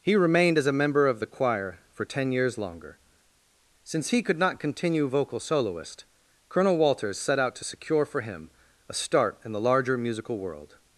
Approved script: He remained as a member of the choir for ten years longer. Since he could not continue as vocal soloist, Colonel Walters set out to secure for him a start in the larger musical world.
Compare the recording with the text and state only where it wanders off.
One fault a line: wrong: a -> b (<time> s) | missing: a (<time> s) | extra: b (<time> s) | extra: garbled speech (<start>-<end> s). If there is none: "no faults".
missing: as (5.1 s)